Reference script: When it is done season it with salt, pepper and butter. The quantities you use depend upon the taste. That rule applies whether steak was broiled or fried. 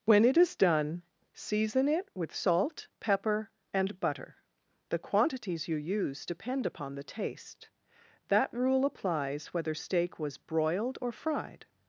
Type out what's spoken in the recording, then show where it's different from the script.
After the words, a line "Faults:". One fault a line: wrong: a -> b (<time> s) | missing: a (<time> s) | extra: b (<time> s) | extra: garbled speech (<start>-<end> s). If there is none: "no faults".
When it is done season it with salt, pepper and butter. The quantities you use depend upon the taste. That rule applies whether steak was broiled or fried.
Faults:
no faults